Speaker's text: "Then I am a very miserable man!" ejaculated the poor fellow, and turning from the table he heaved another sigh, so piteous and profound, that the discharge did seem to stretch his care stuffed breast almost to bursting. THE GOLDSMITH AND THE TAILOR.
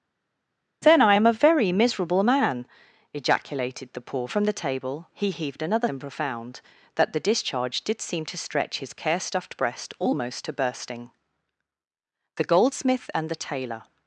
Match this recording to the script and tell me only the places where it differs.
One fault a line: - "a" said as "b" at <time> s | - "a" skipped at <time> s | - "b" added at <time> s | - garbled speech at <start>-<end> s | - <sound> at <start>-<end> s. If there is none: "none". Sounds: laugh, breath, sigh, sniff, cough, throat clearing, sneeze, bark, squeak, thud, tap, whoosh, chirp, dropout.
- "fellow and turning" skipped at 4.3 s
- "sigh so piteous" skipped at 5.9 s